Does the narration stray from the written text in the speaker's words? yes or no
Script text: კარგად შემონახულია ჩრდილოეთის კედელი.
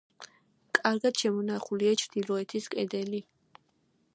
no